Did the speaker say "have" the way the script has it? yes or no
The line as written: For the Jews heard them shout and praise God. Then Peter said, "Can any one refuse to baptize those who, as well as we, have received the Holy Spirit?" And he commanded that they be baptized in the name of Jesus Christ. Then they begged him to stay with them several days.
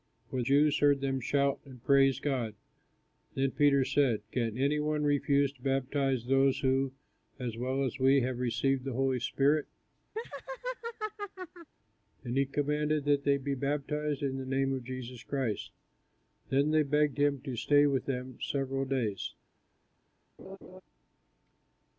yes